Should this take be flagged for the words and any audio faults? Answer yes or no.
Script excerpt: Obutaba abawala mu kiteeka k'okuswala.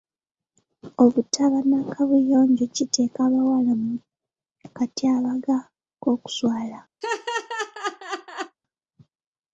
yes